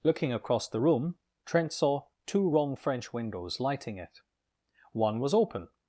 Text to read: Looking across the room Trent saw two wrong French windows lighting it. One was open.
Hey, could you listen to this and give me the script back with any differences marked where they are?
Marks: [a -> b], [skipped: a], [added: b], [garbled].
Looking across the room Trent saw two wrong French windows lighting it. One was open.